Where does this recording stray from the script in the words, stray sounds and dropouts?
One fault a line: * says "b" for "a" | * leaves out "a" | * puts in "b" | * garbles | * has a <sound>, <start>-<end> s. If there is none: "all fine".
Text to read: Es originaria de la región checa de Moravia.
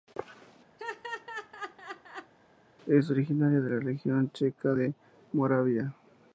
* has a laugh, 0.8-2.3 s